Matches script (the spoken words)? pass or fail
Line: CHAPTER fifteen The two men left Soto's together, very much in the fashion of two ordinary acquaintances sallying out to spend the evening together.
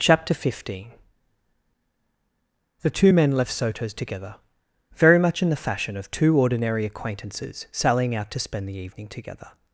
pass